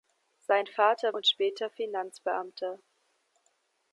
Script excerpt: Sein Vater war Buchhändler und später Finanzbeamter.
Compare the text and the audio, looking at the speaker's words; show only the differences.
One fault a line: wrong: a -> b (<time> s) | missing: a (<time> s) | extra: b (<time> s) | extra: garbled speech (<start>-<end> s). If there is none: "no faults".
missing: war Buchhändler (1.1 s)